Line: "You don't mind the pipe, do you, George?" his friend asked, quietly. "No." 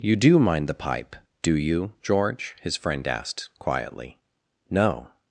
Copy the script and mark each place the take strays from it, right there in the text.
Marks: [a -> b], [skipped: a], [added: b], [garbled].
"You [don't -> do] mind the pipe, do you, George?" his friend asked, quietly. "No."